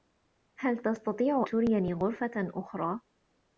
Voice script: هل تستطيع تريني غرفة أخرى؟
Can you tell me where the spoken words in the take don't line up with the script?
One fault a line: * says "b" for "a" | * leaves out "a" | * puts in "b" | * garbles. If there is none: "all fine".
all fine